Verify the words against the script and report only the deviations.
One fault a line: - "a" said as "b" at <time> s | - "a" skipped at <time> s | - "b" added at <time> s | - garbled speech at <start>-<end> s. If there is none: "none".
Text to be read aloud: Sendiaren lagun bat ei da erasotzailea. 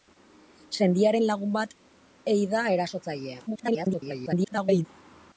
- garbled speech at 3.5-4.9 s